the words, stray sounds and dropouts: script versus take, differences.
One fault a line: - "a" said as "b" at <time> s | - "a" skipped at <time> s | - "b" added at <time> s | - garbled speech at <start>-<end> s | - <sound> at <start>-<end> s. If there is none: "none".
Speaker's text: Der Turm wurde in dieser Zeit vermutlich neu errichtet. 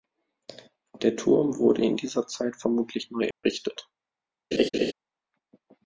- dropout at 3.3-3.4 s
- laugh at 4.5-4.9 s